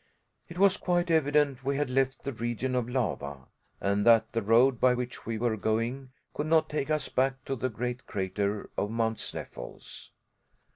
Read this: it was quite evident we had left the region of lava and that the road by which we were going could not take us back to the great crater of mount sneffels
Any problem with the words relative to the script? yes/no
no